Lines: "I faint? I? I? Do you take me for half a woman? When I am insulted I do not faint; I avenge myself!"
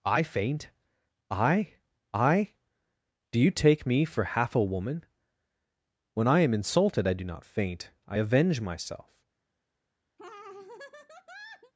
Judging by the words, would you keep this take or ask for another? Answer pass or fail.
pass